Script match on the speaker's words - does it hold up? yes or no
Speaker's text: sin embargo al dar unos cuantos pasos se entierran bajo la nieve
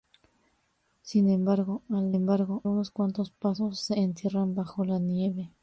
no